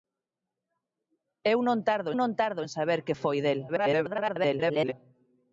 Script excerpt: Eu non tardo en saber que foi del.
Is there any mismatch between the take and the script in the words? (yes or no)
yes